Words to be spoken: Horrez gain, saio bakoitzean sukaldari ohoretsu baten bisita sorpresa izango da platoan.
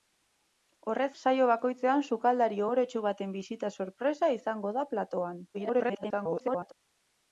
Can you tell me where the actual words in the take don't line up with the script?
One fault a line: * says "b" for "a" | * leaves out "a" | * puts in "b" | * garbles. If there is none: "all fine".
* leaves out "gain"
* garbles